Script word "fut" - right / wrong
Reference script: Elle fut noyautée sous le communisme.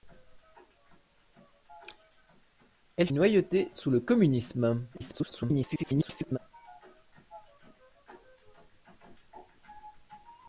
wrong